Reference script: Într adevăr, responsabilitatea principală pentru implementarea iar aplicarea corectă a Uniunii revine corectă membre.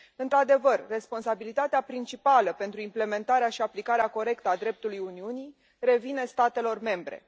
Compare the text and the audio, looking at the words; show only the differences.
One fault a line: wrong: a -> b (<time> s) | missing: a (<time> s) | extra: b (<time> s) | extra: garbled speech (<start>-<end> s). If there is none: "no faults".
wrong: iar -> și (3.5 s)
extra: dreptului (4.6 s)
wrong: corectă -> statelor (6.2 s)